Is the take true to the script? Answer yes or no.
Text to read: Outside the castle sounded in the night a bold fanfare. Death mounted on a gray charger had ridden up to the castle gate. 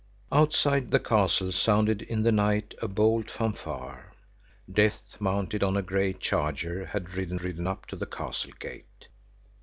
no